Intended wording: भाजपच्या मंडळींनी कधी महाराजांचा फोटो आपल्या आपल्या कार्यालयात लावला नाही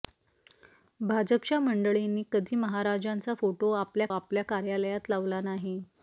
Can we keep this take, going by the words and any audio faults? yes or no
yes